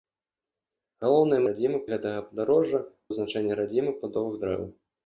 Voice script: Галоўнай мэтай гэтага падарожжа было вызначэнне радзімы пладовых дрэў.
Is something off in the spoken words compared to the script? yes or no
yes